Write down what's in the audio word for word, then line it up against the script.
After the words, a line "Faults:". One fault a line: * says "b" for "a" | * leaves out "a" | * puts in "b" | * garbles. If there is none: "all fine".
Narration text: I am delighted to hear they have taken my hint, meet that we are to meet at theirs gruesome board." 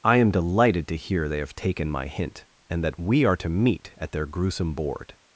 I am delighted to hear they have taken my hint, and that we are to meet at their gruesome board."
Faults:
* says "and" for "meet"
* says "their" for "theirs"